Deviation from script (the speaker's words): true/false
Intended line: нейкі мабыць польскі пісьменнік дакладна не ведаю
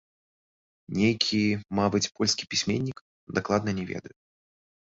false